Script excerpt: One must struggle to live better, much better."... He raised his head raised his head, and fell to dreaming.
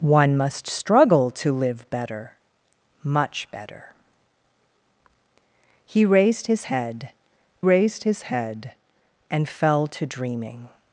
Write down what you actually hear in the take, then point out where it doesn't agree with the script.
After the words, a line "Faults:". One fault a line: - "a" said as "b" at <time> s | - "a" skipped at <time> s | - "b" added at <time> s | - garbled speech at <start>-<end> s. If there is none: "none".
One must struggle to live better, much better."... He raised his head raised his head, and fell to dreaming.
Faults:
none